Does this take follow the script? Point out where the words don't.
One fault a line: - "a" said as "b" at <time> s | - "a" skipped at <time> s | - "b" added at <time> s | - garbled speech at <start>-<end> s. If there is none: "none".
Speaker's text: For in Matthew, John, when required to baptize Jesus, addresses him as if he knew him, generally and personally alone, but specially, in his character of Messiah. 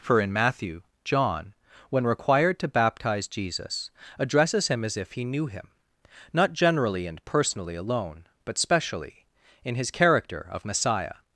- "not" added at 6.3 s